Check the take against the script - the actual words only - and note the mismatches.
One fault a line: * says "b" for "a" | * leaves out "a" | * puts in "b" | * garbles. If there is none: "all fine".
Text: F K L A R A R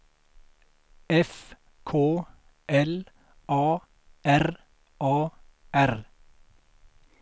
all fine